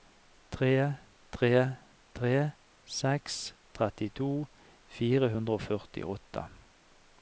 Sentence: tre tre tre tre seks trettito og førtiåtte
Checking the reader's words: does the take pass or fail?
fail